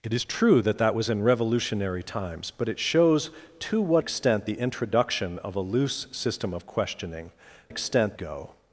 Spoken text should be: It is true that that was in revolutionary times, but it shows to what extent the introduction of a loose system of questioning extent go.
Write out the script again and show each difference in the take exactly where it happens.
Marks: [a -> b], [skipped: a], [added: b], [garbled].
It is true that that was in revolutionary times, but it shows to what extent the introduction of a loose system of questioning extent go.